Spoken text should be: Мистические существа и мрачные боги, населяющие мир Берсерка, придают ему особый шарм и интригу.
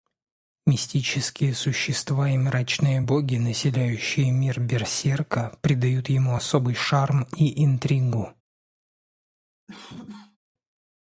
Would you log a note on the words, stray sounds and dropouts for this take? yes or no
yes